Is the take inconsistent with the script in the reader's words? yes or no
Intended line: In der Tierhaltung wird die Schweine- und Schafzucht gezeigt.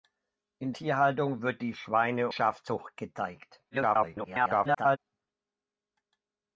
yes